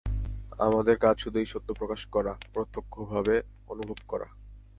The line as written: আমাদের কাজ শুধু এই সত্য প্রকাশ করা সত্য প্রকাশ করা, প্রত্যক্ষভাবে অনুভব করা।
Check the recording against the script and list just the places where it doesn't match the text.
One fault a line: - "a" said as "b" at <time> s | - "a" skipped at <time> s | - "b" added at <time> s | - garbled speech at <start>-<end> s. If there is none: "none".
- "সত্য প্রকাশ করা" skipped at 2.3 s